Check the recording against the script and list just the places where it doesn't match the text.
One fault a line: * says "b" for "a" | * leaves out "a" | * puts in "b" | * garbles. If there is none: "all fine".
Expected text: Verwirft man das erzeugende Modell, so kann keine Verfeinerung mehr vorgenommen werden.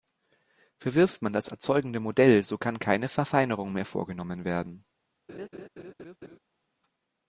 all fine